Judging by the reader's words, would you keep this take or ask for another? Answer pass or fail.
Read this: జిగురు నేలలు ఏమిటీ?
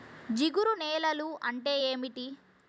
fail